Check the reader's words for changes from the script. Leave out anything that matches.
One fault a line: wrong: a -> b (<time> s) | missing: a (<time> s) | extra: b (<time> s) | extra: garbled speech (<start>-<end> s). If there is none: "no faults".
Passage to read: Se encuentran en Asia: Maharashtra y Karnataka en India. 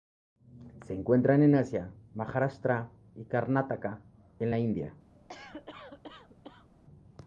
extra: la (4.5 s)